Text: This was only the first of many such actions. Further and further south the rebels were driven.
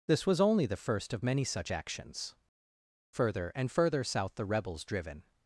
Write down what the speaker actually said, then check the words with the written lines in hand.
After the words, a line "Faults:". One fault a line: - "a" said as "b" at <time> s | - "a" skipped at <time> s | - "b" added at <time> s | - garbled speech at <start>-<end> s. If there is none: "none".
This was only the first of many such actions. Further and further south the rebels driven.
Faults:
- "were" skipped at 4.8 s